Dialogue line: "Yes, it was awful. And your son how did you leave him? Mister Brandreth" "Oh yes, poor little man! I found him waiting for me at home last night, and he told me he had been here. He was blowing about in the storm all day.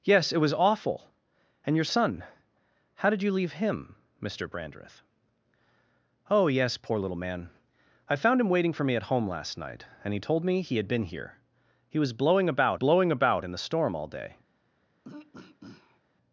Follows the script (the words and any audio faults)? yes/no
no